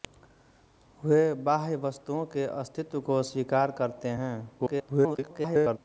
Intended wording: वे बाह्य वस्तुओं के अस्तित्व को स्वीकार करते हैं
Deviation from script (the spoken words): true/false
true